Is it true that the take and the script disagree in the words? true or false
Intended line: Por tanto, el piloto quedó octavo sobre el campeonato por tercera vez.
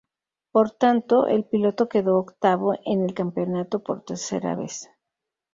true